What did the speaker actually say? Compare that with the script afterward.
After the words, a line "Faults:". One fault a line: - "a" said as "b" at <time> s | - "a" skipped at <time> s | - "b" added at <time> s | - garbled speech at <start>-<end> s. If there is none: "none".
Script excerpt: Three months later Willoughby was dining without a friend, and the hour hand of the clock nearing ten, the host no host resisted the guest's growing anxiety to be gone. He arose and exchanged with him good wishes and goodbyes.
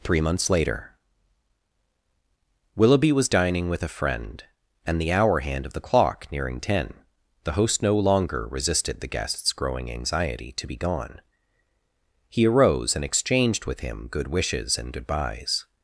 Three months later Willoughby was dining with a friend, and the hour hand of the clock nearing ten, the host no longer resisted the guest's growing anxiety to be gone. He arose and exchanged with him good wishes and goodbyes.
Faults:
- "without" said as "with" at 3.7 s
- "host" said as "longer" at 8.0 s